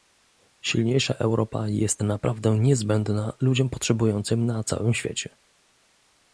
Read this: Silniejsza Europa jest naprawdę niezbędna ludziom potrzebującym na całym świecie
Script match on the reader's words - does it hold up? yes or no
yes